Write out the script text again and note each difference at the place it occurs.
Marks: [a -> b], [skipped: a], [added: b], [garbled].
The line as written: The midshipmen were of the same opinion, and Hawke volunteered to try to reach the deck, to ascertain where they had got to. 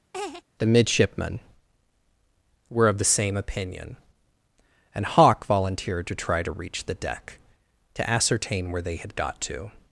The midshipmen were of the same opinion, and Hawke volunteered to try to reach the deck, to ascertain where they had got to.